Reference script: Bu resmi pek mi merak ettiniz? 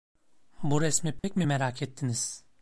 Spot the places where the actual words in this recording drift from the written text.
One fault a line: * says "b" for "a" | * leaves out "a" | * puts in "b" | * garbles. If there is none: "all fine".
all fine